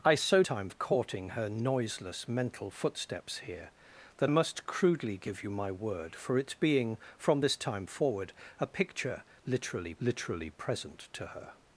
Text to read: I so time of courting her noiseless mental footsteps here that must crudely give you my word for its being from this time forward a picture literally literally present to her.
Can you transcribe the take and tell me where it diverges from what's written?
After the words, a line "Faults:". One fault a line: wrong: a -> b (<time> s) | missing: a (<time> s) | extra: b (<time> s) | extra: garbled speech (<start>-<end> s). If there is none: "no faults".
I so time of courting her noiseless mental footsteps here that must crudely give you my word for its being from this time forward a picture literally literally present to her.
Faults:
no faults